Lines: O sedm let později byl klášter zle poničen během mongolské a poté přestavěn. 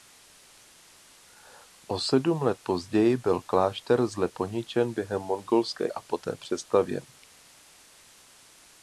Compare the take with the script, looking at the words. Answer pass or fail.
pass